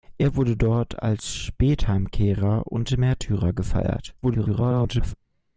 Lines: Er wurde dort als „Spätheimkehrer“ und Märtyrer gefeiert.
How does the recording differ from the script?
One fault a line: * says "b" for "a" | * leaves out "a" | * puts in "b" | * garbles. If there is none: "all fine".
* garbles